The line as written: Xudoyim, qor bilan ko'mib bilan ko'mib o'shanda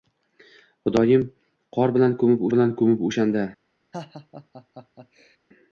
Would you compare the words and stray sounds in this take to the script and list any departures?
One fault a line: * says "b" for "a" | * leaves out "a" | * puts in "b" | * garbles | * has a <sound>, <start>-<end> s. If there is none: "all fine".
* has a laugh, 3.9-5.4 s